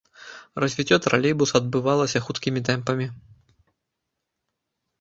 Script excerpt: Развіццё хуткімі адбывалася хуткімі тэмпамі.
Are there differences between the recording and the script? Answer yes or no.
yes